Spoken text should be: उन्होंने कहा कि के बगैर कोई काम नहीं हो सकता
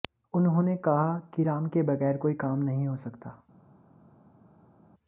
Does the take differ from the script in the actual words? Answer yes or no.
yes